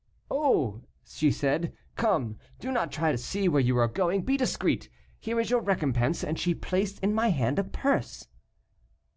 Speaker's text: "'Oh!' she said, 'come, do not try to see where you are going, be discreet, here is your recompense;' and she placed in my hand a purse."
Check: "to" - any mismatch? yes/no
no